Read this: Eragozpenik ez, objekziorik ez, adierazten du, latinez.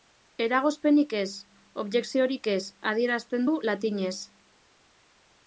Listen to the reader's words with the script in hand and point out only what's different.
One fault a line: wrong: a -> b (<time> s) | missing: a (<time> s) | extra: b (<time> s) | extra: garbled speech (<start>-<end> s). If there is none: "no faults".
no faults